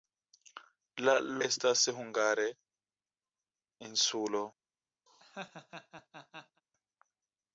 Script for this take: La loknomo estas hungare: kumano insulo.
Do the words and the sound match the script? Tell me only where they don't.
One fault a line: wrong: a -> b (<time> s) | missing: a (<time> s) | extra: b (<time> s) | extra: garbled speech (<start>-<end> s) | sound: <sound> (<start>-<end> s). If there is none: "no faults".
missing: loknomo (1.1 s)
missing: kumano (2.5 s)
sound: laugh (5.1-6.6 s)